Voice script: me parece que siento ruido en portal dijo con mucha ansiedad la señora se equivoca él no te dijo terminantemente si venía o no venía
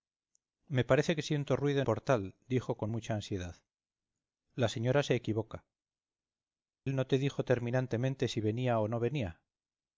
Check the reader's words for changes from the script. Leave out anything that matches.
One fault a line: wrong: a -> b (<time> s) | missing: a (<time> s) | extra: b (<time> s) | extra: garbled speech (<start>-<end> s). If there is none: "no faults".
no faults